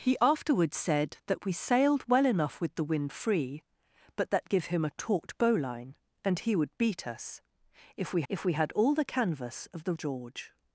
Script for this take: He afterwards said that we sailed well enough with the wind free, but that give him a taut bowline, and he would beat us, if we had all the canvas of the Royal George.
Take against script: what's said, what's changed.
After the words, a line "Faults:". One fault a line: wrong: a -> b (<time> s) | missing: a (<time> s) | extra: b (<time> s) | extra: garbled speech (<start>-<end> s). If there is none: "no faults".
He afterwards said that we sailed well enough with the wind free, but that give him a taut bowline, and he would beat us, if we if we had all the canvas of the George.
Faults:
extra: if we (8.3 s)
missing: Royal (9.9 s)